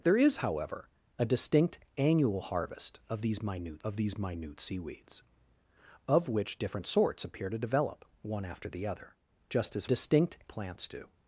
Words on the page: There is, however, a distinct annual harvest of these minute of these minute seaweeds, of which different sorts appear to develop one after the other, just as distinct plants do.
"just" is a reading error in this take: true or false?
false